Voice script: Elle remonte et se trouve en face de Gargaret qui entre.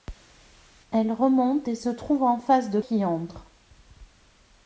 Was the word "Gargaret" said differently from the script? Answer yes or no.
yes